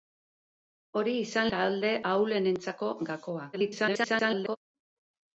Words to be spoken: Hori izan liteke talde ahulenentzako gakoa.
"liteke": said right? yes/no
no